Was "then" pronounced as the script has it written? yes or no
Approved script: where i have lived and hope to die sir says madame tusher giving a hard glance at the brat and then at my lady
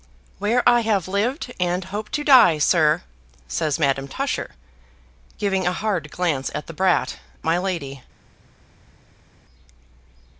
no